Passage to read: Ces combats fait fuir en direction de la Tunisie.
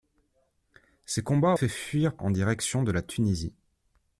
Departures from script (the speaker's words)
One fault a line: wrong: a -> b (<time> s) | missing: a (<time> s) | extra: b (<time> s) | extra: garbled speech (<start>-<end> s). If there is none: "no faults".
no faults